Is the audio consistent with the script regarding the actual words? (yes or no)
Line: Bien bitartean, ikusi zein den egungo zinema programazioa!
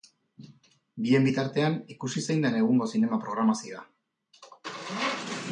yes